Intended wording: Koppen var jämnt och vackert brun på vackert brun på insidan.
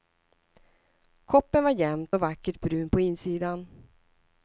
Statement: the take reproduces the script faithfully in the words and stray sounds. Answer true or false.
false